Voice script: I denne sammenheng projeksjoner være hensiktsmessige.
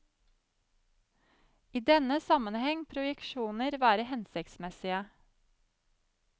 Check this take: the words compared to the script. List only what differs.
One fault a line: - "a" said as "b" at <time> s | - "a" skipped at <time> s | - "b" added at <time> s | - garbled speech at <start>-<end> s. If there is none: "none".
none